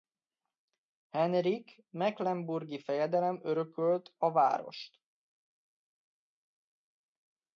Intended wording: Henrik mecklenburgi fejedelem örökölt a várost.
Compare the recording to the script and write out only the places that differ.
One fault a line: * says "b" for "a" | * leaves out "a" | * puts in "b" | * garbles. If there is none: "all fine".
all fine